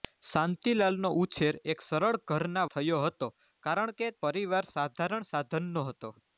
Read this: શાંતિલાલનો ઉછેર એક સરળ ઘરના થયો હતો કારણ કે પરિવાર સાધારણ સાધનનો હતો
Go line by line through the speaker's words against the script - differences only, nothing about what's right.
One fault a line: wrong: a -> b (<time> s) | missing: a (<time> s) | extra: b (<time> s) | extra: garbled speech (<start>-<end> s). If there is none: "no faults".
no faults